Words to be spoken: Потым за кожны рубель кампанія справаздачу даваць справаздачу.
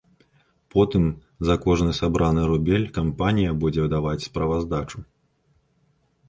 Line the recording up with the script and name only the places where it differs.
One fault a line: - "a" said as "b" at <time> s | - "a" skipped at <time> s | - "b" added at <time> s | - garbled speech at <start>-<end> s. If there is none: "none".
- "сабраны" added at 2.0 s
- "справаздачу" said as "будзе" at 3.6 s